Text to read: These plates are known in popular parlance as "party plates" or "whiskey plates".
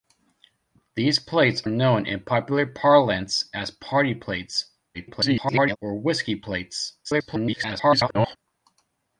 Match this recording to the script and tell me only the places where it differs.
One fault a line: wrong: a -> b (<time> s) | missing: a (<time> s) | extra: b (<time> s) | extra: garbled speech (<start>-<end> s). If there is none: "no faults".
missing: are (1.6 s)
extra: garbled speech (4.9-5.8 s)
extra: garbled speech (7.0-8.4 s)